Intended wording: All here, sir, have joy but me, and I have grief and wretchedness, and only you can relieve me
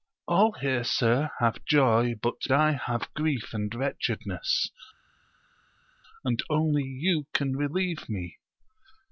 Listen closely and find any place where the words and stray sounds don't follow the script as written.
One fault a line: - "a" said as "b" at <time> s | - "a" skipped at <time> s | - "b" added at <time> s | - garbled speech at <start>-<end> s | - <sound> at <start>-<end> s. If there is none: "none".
- "me and" skipped at 2.5 s